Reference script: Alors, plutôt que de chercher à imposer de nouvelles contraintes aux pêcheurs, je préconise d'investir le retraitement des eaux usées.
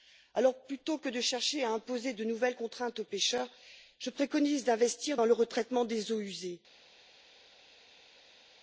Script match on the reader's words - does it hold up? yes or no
no